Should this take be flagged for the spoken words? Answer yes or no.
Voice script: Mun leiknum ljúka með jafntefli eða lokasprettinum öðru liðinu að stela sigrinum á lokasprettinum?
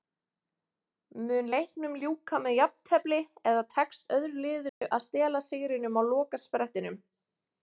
yes